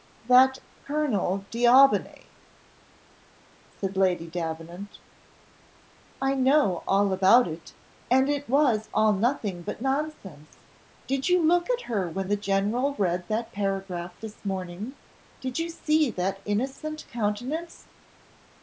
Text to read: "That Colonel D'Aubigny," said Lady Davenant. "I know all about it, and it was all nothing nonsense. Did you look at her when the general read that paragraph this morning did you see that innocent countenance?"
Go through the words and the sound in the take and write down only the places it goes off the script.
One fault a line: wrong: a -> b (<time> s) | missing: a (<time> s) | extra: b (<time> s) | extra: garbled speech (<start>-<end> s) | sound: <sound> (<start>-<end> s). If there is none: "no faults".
extra: but (9.6 s)